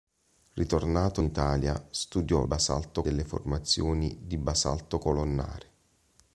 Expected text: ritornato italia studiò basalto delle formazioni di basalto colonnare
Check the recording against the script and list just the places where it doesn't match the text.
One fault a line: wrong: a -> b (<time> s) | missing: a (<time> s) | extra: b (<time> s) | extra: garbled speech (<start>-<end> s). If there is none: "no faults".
no faults